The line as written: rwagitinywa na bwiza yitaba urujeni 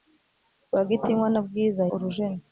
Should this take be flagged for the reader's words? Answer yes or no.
yes